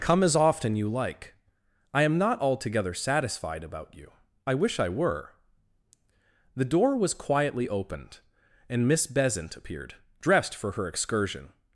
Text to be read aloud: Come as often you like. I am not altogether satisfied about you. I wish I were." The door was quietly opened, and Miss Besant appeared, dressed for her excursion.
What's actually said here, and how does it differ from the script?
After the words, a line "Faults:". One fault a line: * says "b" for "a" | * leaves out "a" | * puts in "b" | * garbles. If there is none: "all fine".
Come as often you like. I am not altogether satisfied about you. I wish I were." The door was quietly opened, and Miss Besant appeared, dressed for her excursion.
Faults:
all fine